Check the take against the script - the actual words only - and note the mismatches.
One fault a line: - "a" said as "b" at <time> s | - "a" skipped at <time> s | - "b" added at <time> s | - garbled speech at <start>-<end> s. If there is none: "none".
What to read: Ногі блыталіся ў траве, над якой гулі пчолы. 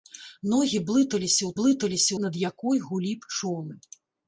- "траве" said as "блыталіся" at 1.6 s